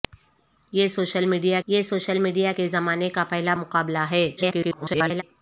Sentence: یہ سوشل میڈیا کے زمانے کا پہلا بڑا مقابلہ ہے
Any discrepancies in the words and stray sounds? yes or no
yes